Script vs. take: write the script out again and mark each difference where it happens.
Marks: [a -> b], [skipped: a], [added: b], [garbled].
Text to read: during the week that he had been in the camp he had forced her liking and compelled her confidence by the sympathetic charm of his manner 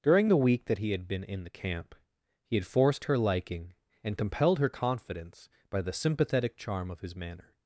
during the week that he had been in the camp he had forced her liking and compelled her confidence by the sympathetic charm of his manner